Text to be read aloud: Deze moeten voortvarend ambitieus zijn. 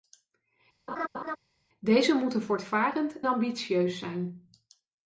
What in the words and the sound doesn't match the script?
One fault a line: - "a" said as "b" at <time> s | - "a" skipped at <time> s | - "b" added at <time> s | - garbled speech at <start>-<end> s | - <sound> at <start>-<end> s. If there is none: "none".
- laugh at 0.9-1.4 s